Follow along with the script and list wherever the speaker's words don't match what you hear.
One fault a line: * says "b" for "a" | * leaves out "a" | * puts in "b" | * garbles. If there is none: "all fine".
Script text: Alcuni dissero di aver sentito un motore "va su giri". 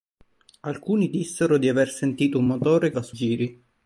all fine